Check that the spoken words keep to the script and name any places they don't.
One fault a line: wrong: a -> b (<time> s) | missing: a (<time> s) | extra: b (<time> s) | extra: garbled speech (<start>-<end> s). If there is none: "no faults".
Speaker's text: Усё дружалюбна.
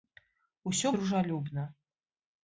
no faults